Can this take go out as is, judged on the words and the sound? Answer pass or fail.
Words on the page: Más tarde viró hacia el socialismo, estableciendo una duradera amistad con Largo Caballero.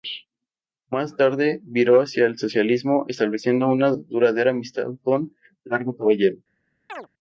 fail